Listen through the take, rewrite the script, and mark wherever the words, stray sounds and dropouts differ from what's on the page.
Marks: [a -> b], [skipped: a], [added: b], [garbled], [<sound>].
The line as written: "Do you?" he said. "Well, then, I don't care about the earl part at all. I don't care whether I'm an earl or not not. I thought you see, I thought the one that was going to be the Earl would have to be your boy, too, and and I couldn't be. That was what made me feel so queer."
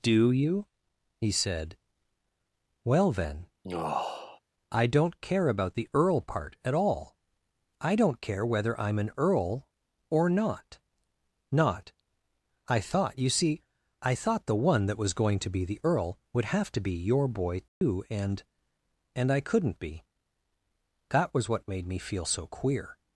"Do you?" he said. "Well, then, [sigh] I don't care about the earl part at all. I don't care whether I'm an earl or not not. I thought you see, I thought the one that was going to be the Earl would have to be your boy, too, [dropout] and and I couldn't be. That was what made me feel so queer."